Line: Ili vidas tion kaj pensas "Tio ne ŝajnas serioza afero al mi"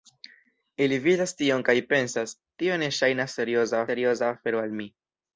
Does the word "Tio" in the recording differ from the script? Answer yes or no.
no